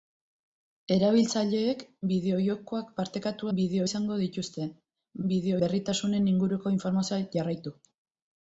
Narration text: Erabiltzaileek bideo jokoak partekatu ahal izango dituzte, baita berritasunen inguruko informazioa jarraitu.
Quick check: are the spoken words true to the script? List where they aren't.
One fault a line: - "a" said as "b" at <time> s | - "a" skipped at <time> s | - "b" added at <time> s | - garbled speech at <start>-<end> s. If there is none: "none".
- "ahal" said as "bideo" at 3.6 s
- "baita" said as "bideo" at 5.3 s